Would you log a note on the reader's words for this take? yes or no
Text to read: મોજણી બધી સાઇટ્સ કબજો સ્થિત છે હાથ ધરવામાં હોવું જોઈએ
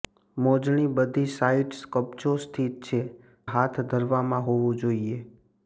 no